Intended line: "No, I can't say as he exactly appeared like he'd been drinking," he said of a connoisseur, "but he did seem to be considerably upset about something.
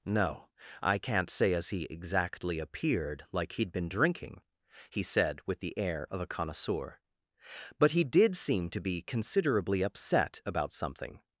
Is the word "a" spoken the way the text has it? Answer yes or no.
yes